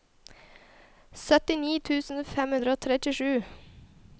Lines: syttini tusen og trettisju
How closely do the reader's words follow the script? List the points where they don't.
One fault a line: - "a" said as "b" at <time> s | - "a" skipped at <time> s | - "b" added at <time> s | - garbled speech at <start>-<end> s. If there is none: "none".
- "fem hundre" added at 2.3 s